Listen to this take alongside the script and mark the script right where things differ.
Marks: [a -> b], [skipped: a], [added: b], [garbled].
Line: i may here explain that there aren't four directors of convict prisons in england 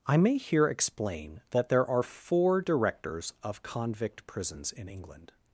i may here explain that there [aren't -> are] four directors of convict prisons in england